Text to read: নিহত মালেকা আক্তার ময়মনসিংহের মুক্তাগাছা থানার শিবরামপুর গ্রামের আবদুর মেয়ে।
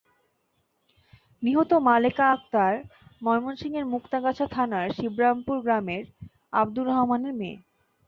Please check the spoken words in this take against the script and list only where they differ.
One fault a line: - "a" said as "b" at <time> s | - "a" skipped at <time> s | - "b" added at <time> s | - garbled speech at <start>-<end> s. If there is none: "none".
- "রহমানের" added at 6.9 s